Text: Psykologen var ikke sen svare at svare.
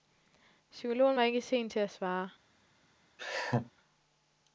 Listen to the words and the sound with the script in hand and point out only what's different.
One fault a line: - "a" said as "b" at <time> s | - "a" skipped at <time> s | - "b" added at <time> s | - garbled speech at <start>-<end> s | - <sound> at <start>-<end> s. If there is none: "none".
- "svare" said as "til" at 1.7 s
- laugh at 3.2-3.7 s